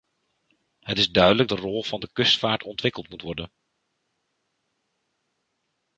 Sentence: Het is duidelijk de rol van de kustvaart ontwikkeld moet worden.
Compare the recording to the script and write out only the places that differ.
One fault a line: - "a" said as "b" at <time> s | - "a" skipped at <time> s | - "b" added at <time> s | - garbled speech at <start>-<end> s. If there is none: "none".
none